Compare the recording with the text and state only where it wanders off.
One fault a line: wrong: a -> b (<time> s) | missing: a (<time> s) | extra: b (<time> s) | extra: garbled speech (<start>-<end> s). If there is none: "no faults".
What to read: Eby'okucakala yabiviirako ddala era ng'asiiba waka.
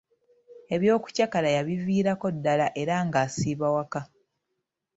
no faults